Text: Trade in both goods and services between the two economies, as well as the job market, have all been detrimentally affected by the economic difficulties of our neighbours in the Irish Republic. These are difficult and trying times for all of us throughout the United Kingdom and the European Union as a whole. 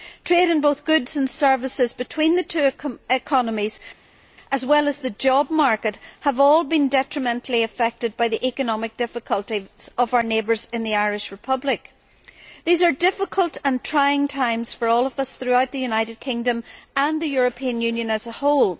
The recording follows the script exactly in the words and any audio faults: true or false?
true